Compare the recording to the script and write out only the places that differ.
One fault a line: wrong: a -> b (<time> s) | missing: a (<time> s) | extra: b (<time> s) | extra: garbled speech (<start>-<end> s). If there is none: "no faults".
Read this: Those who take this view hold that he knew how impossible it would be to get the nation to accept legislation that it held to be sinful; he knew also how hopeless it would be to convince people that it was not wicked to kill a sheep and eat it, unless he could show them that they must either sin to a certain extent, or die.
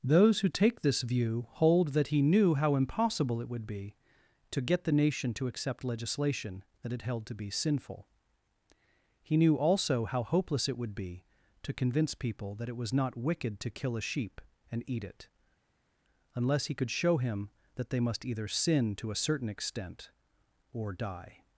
wrong: them -> him (17.2 s)